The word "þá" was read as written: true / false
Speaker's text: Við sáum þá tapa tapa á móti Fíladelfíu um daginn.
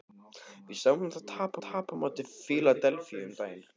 true